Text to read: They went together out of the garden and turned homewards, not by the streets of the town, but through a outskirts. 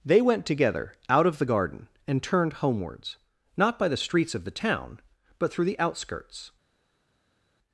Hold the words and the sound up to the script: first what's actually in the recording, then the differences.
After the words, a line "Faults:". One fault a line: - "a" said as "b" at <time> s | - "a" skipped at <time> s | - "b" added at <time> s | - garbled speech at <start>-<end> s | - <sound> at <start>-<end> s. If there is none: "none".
They went together out of the garden and turned homewards, not by the streets of the town, but through the outskirts.
Faults:
- "a" said as "the" at 5.6 s